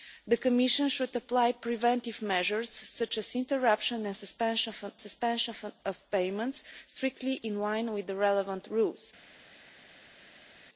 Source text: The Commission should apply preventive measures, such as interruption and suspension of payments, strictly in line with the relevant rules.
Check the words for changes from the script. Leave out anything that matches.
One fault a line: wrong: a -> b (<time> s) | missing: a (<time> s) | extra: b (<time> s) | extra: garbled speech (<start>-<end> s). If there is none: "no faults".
extra: suspension (5.0 s)